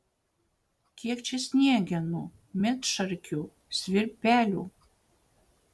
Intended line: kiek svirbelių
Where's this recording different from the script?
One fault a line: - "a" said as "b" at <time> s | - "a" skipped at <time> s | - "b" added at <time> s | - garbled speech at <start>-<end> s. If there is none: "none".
- "čia sniegenų medšarkių" added at 1.3 s